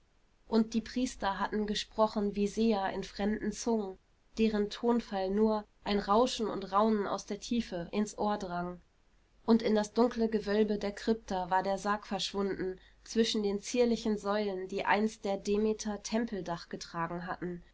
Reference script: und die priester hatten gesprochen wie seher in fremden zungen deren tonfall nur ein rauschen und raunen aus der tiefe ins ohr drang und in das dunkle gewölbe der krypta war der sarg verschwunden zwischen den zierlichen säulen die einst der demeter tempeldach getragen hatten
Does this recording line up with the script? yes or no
yes